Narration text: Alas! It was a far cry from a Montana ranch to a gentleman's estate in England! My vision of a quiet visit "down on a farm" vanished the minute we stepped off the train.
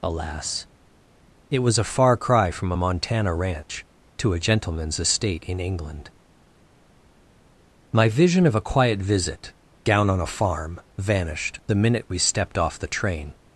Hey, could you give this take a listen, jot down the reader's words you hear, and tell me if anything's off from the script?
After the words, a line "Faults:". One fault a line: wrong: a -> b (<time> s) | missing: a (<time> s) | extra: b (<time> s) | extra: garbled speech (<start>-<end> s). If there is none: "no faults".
Alas! It was a far cry from a Montana ranch to a gentleman's estate in England! My vision of a quiet visit "down on a farm" vanished the minute we stepped off the train.
Faults:
no faults